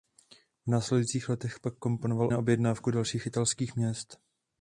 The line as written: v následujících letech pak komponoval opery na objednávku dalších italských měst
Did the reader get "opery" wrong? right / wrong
wrong